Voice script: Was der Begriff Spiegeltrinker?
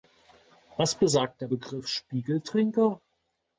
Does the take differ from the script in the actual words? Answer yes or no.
yes